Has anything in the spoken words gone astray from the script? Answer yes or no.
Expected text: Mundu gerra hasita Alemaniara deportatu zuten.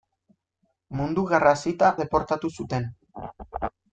yes